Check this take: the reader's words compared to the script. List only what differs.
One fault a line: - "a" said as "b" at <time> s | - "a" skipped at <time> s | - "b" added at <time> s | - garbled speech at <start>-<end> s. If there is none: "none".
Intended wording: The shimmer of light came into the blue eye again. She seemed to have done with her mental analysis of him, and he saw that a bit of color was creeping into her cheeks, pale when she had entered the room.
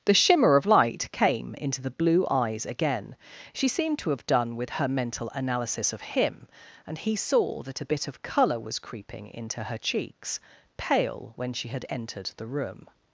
- "eye" said as "eyes" at 2.3 s